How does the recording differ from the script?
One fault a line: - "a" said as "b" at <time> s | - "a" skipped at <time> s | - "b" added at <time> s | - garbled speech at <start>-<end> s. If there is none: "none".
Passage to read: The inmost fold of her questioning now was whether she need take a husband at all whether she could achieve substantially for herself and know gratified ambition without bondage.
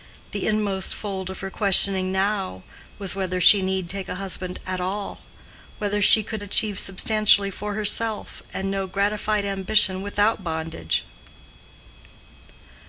none